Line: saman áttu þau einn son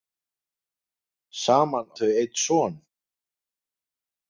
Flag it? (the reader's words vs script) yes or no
yes